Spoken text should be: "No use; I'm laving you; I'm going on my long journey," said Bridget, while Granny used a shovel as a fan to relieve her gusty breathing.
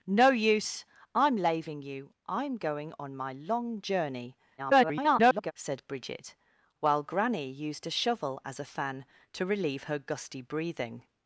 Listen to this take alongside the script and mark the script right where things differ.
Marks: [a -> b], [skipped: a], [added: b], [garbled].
"No use; I'm laving you; I'm going on my long journey," [garbled] said Bridget, while Granny used a shovel as a fan to relieve her gusty breathing.